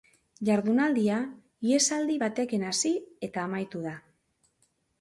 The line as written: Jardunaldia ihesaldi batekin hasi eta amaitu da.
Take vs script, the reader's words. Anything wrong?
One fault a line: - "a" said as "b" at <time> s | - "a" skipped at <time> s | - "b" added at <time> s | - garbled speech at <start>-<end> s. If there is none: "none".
none